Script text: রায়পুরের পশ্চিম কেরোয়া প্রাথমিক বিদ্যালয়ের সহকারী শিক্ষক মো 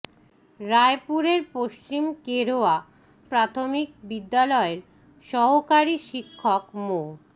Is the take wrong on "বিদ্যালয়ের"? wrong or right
right